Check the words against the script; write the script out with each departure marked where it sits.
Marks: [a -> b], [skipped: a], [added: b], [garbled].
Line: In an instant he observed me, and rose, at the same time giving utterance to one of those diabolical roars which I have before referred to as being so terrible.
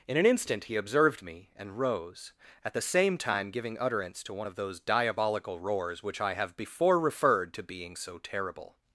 In an instant he observed me, and rose, at the same time giving utterance to one of those diabolical roars which I have before referred to [skipped: as] being so terrible.